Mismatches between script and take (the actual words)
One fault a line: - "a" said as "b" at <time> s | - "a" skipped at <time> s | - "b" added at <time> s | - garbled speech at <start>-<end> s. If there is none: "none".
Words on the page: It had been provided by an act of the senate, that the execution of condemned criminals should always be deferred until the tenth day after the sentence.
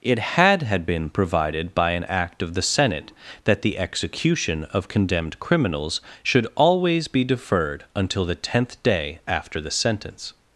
- "had" added at 0.6 s